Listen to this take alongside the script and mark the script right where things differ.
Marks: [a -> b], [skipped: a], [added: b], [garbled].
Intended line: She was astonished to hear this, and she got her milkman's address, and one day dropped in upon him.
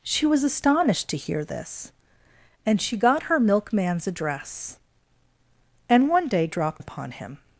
She was astonished to hear this, and she got her milkman's address, and one day dropped [skipped: in] upon him.